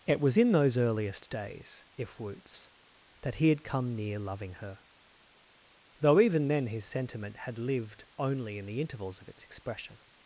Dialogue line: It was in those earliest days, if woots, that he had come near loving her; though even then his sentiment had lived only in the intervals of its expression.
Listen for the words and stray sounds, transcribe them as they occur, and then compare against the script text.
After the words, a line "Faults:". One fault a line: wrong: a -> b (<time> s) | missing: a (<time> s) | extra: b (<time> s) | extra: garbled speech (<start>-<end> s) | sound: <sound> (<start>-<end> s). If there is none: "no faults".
It was in those earliest days, if woots, that he had come near loving her; though even then his sentiment had lived only in the intervals of its expression.
Faults:
no faults